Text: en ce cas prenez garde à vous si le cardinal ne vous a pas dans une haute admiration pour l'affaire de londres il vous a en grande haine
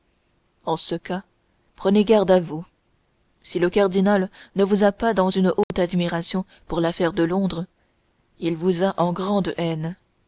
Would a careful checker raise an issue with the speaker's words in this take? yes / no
no